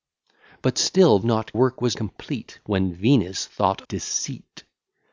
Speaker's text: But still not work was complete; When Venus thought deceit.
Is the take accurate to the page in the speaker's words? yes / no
yes